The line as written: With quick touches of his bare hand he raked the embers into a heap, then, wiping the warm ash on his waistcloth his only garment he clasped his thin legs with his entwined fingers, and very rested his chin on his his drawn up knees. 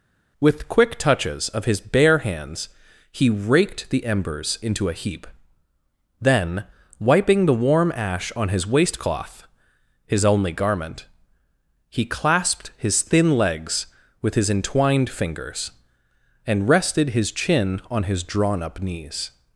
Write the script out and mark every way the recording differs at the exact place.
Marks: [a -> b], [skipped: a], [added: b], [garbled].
With quick touches of his bare [hand -> hands] he raked the embers into a heap, then, wiping the warm ash on his waistcloth his only garment he clasped his thin legs with his entwined fingers, and [skipped: very] rested his chin on his [skipped: his] drawn up knees.